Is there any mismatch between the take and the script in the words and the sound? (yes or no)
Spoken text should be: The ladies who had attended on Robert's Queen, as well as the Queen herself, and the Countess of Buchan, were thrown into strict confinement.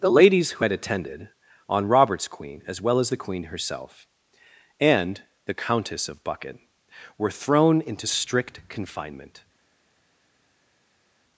no